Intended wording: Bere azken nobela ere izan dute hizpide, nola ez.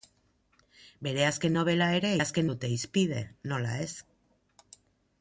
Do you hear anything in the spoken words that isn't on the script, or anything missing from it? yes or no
yes